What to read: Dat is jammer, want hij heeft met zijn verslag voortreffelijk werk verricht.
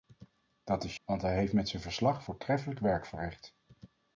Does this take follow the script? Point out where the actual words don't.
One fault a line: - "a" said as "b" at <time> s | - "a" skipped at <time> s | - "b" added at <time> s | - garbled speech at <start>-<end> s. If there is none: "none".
- "jammer" skipped at 0.9 s